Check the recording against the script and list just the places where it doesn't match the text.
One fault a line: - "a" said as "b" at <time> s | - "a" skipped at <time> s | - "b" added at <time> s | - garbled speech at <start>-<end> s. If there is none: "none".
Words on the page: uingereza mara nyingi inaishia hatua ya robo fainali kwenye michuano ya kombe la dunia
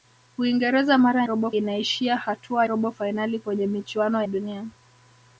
- "nyingi" said as "robo" at 1.2 s
- "ya" skipped at 2.7 s
- "ya kombe la" skipped at 4.2 s